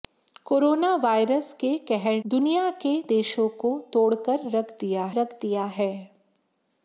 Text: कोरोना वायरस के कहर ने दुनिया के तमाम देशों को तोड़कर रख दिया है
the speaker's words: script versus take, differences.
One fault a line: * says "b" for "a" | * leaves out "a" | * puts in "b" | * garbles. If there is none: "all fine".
* leaves out "ने"
* leaves out "तमाम"
* puts in "रख दिया"